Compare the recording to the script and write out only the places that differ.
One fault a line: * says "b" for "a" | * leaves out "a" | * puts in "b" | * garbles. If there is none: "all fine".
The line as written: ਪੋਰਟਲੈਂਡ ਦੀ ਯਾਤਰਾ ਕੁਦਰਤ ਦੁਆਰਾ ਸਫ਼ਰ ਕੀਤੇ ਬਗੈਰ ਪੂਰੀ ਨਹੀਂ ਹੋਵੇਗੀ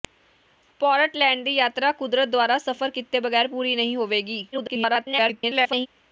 * garbles